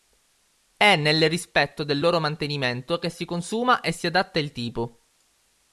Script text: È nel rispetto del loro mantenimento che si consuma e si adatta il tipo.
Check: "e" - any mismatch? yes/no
no